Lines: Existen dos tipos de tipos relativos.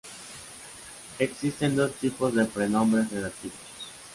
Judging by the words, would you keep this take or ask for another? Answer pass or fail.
fail